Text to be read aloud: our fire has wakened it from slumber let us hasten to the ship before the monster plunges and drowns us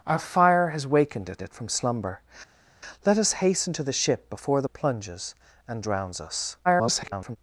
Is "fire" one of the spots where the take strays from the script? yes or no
no